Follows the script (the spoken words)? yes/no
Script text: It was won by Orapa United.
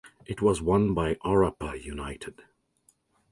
yes